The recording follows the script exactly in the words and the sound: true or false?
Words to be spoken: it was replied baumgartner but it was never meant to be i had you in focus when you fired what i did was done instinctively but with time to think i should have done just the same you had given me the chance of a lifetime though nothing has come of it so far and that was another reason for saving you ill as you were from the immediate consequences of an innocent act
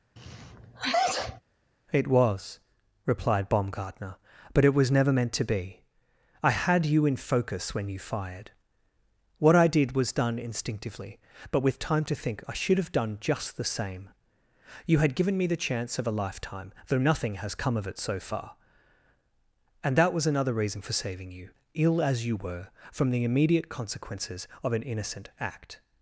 false